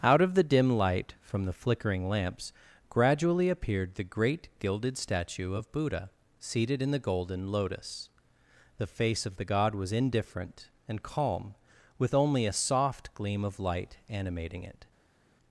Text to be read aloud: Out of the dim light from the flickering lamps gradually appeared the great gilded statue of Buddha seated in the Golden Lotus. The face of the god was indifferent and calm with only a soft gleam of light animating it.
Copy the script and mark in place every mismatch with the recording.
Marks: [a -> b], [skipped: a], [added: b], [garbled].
Out of the dim light from the flickering lamps gradually appeared the great gilded statue of Buddha seated in the Golden Lotus. The face of the god was indifferent and calm with only a soft gleam of light animating it.